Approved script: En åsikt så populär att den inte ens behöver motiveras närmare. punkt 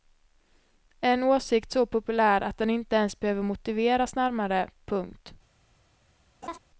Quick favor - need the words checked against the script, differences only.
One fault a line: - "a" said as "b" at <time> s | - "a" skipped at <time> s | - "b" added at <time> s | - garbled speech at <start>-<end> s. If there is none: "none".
none